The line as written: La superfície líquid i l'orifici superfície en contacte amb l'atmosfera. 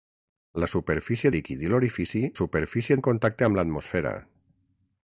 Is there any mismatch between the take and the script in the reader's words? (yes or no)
no